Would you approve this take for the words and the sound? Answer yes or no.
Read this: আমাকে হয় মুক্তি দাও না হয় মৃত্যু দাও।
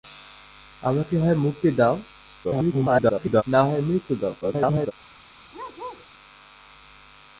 no